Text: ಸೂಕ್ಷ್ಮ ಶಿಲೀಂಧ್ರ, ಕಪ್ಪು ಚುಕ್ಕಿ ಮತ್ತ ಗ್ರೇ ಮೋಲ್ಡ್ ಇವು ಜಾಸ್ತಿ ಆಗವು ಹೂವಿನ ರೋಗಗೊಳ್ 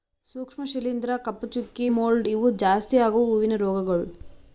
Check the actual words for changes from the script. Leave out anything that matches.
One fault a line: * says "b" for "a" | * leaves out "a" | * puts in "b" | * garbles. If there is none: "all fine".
* leaves out "ಮತ್ತ ಗ್ರೇ"